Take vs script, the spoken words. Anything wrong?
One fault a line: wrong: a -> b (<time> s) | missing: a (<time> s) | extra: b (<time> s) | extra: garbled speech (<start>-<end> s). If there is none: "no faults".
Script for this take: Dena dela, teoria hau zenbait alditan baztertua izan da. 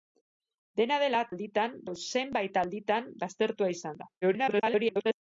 wrong: teoria -> alditan (1.3 s)
extra: garbled speech (4.2-5.2 s)